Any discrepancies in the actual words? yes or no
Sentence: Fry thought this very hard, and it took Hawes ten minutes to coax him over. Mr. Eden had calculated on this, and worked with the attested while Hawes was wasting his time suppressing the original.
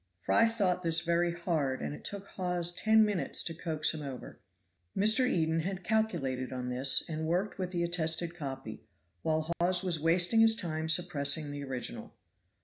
yes